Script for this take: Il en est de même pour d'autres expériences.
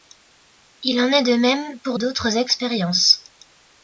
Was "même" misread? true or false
false